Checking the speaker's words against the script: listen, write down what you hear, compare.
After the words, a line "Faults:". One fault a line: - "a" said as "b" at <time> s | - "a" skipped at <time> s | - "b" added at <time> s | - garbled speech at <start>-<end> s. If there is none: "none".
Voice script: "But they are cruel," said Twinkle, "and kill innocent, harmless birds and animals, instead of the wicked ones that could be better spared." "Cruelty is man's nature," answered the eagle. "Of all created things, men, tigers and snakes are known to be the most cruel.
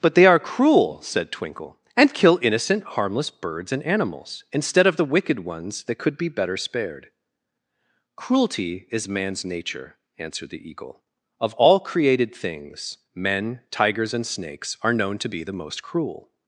"But they are cruel," said Twinkle, "and kill innocent, harmless birds and animals, instead of the wicked ones that could be better spared." "Cruelty is man's nature," answered the eagle. "Of all created things, men, tigers and snakes are known to be the most cruel.
Faults:
none